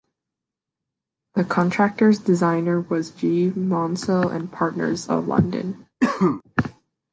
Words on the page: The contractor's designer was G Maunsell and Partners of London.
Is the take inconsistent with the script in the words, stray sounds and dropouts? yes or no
yes